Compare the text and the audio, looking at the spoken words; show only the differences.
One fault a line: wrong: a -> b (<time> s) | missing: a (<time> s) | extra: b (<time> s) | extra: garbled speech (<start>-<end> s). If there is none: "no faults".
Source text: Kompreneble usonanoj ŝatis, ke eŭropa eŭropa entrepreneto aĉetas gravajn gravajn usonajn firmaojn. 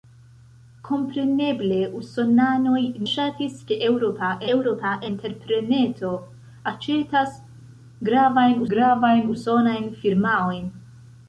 no faults